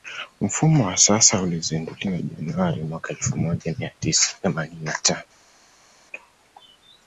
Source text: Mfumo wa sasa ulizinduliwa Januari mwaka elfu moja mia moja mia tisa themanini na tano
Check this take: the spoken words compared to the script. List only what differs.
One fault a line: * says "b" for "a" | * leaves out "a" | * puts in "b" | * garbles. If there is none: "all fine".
* leaves out "moja mia"